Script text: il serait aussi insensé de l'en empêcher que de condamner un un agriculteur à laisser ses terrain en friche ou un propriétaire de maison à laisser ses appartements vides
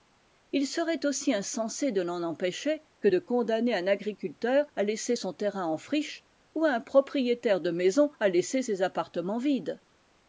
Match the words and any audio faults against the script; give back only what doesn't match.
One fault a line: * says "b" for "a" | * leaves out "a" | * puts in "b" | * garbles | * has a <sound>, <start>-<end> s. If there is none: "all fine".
* leaves out "un"
* says "son" for "ses"